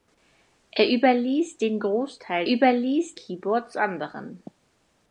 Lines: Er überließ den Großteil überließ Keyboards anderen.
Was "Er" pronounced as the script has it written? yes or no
yes